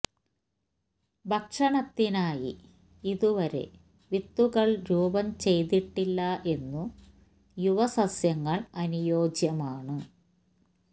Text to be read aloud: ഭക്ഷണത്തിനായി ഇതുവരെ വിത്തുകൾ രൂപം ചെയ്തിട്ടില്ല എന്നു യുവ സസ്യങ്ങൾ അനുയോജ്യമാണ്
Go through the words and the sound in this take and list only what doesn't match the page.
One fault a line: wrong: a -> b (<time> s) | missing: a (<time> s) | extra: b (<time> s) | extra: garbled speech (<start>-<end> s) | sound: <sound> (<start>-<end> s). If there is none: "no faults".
no faults